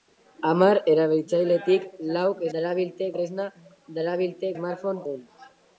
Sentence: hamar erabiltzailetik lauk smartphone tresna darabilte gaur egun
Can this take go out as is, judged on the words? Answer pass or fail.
fail